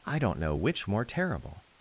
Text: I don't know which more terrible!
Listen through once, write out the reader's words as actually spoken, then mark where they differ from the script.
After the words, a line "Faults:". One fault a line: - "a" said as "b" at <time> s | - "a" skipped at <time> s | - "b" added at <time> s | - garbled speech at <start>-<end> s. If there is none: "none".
I don't know which more terrible!
Faults:
none